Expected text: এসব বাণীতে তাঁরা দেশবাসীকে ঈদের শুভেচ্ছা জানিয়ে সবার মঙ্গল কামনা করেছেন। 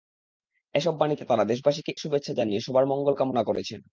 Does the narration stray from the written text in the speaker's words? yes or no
yes